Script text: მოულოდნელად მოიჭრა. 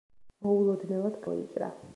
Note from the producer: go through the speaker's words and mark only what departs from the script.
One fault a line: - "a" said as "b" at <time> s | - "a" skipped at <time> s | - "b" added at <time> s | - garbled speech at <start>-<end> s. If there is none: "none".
none